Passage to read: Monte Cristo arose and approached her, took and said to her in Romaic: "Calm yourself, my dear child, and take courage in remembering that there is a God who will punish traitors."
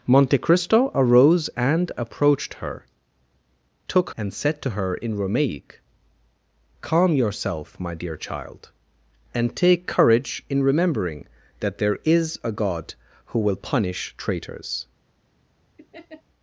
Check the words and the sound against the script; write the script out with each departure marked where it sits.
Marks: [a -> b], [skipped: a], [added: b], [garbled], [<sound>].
Monte Cristo arose and approached her, took and said to her in Romaic: "Calm yourself, my dear child, and take courage in remembering that there is a God who will punish traitors." [laugh]